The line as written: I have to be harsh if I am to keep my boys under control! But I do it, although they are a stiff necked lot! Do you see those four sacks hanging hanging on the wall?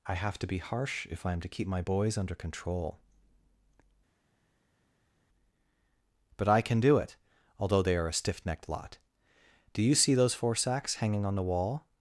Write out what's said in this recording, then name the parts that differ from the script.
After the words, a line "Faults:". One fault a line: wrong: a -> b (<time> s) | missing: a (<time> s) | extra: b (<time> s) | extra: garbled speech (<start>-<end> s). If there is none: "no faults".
I have to be harsh if I am to keep my boys under control! But I can do it, although they are a stiff necked lot! Do you see those four sacks hanging on the wall?
Faults:
extra: can (6.6 s)
missing: hanging (11.2 s)